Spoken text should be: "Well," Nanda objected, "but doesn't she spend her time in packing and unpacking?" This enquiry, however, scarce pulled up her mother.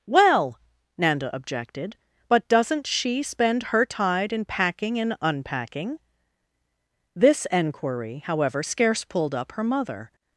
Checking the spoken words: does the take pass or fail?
fail